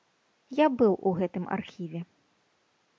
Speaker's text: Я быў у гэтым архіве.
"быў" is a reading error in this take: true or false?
false